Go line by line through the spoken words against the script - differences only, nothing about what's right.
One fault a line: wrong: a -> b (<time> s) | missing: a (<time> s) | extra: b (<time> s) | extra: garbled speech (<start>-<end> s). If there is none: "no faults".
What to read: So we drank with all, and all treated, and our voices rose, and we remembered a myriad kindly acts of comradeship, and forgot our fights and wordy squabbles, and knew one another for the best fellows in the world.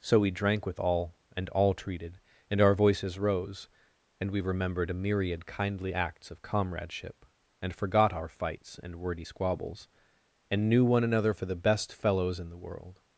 no faults